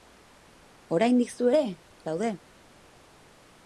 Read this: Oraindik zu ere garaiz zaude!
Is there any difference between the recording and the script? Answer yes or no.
yes